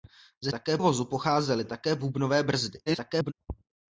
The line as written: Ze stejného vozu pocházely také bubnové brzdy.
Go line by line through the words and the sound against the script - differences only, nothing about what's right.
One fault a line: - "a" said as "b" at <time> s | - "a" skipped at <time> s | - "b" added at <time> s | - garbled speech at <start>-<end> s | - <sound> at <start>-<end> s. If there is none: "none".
- "stejného" said as "také" at 0.5 s
- garbled speech at 2.9-3.3 s